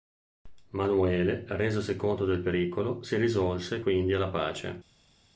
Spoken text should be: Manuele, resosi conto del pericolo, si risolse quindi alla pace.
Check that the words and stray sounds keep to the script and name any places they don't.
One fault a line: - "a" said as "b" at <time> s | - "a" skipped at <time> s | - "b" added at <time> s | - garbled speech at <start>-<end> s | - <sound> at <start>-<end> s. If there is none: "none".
none